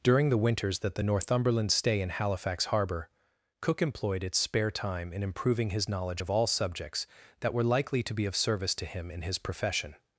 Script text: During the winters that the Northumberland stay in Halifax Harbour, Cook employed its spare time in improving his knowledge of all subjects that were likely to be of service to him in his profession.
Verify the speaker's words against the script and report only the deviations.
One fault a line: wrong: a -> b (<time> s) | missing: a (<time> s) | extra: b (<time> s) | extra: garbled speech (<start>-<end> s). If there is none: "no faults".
no faults